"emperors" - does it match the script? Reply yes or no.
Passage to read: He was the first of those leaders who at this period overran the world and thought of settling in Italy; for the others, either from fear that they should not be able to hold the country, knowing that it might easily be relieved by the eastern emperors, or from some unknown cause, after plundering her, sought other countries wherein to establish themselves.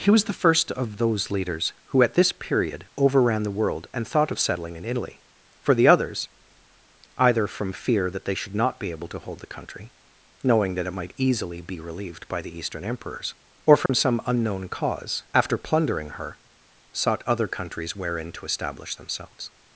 yes